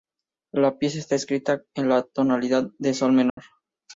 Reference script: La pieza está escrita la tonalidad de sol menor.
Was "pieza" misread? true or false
false